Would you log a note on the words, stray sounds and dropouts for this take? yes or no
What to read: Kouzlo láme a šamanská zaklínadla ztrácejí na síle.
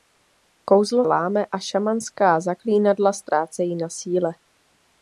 no